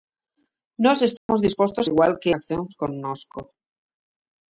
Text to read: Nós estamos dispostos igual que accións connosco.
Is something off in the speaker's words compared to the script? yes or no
no